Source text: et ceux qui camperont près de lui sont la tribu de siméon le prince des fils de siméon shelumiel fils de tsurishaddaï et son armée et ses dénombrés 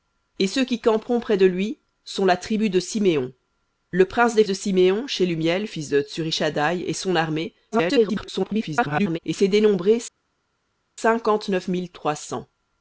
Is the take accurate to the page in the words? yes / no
no